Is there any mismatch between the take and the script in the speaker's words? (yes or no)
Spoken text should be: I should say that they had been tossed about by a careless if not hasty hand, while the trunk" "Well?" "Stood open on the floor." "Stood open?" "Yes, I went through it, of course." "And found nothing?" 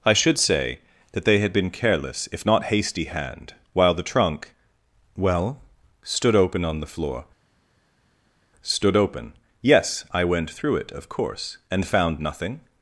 yes